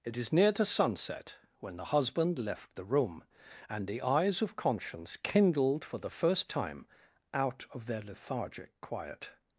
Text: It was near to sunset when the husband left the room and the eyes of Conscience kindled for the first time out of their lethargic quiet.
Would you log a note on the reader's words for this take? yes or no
yes